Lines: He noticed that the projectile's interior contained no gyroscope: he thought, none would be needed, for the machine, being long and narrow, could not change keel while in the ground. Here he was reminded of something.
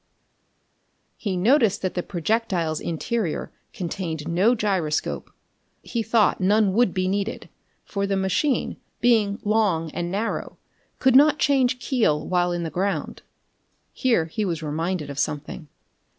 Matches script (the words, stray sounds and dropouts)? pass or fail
pass